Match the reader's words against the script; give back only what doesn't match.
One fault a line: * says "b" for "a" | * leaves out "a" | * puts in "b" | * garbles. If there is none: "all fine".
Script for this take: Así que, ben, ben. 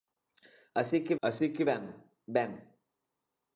* puts in "así que"